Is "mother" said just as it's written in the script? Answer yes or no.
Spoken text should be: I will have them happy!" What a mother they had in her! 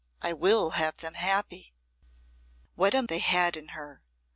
no